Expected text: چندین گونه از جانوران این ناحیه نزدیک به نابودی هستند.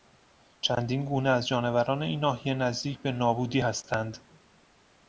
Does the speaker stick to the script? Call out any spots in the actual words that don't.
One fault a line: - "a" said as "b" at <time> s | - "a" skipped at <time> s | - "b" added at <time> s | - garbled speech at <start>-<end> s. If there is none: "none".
none